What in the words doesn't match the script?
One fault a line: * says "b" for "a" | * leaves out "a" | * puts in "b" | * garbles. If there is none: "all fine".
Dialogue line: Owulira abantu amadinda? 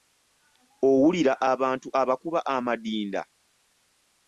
* puts in "abakuba"